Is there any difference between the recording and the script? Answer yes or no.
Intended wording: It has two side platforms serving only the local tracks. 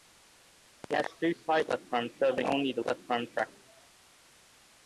yes